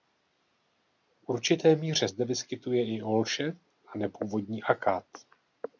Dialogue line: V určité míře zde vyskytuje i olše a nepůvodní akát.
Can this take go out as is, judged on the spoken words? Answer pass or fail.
pass